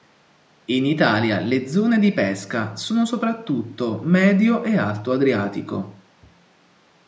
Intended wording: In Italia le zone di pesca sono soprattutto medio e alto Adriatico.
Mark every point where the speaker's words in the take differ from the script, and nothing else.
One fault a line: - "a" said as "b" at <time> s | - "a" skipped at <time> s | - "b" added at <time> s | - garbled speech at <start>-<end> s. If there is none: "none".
none